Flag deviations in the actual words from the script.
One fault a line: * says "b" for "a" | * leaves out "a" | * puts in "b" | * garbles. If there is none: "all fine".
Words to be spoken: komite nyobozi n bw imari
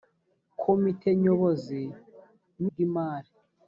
all fine